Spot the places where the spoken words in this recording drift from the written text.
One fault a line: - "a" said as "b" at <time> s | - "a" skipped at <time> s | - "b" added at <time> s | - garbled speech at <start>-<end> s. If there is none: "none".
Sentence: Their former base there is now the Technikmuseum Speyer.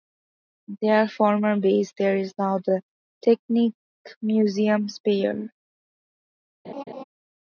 none